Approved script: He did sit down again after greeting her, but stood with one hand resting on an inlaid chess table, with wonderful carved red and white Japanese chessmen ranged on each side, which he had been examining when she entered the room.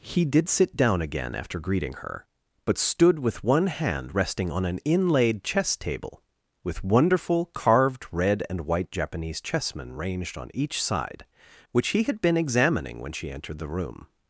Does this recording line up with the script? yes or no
yes